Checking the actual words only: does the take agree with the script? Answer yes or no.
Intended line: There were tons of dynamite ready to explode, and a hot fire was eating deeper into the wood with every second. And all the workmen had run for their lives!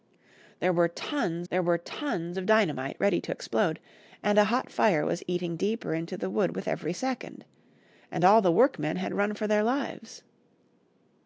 no